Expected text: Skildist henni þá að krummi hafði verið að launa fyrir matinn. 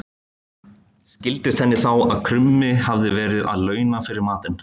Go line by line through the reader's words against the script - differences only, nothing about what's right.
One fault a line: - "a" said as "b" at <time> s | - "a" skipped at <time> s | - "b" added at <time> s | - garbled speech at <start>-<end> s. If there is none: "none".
none